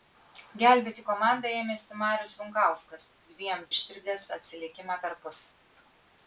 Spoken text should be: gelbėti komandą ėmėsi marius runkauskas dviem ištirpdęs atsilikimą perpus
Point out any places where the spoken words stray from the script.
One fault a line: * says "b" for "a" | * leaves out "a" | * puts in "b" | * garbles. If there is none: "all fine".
all fine